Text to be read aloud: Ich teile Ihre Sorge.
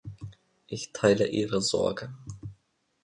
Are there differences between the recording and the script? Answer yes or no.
no